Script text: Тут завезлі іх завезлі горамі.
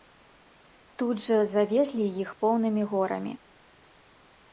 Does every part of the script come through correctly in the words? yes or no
no